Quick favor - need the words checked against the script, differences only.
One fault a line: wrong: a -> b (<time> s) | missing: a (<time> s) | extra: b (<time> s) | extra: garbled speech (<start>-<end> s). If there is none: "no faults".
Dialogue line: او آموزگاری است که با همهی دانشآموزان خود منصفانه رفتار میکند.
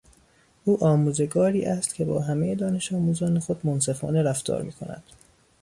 no faults